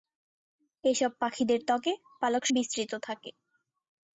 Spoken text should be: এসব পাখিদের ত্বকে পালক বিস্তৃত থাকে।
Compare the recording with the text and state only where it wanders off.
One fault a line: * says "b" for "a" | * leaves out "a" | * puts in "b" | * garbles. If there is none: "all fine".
all fine